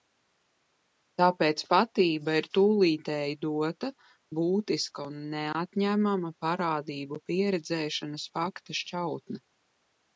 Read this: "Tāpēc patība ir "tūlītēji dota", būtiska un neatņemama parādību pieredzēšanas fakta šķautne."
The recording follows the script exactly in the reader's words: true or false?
true